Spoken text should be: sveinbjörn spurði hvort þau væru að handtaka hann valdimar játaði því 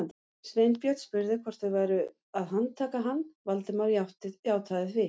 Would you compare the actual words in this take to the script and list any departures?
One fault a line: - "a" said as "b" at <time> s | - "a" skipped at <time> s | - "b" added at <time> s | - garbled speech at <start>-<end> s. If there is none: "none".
none